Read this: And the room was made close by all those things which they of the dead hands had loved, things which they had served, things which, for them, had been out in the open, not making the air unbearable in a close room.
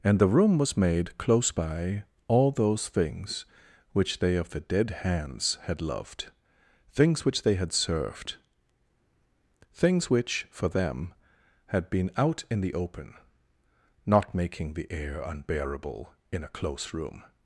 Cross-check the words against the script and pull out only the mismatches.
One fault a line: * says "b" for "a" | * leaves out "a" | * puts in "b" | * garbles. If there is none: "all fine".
all fine